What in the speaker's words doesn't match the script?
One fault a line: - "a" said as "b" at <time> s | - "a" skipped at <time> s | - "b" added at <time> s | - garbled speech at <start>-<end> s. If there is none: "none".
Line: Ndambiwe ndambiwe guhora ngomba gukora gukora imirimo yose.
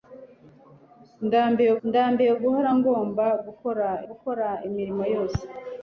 none